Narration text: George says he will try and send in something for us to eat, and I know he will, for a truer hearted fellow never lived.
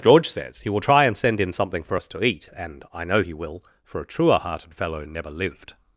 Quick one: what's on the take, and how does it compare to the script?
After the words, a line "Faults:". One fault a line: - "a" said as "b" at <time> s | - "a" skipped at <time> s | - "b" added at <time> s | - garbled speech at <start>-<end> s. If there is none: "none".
George says he will try and send in something for us to eat, and I know he will, for a truer hearted fellow never lived.
Faults:
none